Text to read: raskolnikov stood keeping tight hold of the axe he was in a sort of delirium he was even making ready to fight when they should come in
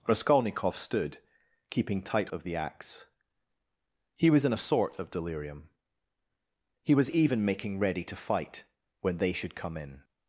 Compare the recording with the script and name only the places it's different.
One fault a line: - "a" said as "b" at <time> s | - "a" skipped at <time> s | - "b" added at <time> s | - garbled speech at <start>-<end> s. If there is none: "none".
- "hold" skipped at 2.3 s